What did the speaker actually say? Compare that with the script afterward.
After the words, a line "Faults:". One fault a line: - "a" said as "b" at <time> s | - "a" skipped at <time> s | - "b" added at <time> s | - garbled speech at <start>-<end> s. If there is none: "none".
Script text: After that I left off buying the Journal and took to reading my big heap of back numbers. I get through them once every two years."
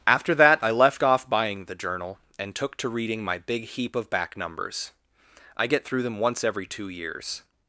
After that I left off buying the Journal and took to reading my big heap of back numbers. I get through them once every two years."
Faults:
none